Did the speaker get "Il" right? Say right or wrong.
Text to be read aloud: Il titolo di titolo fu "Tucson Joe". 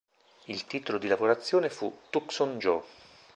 right